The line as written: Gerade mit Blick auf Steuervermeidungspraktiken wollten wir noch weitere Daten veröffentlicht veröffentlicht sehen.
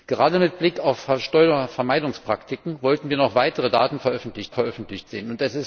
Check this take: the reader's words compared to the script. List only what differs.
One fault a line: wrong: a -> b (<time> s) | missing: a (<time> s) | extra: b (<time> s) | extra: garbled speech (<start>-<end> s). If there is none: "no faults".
no faults